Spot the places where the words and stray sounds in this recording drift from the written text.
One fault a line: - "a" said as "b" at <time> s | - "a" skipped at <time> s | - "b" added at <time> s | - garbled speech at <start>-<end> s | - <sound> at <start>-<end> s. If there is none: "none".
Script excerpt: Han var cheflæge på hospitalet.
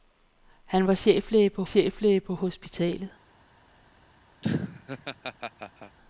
- "cheflæge på" added at 1.6 s
- laugh at 4.4-6.0 s